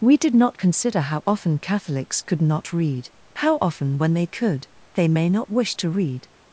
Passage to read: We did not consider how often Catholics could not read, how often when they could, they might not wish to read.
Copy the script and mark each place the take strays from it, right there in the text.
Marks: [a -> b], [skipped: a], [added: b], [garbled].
We did not consider how often Catholics could not read, how often when they could, they [might -> may] not wish to read.